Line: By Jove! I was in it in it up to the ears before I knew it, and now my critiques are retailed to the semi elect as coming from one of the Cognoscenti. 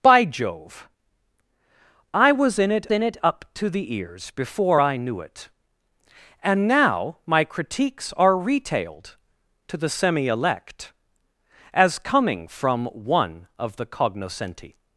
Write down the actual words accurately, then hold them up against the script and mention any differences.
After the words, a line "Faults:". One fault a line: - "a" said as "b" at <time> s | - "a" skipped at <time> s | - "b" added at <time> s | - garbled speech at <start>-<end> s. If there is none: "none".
By Jove! I was in it in it up to the ears before I knew it, and now my critiques are retailed to the semi elect as coming from one of the Cognoscenti.
Faults:
none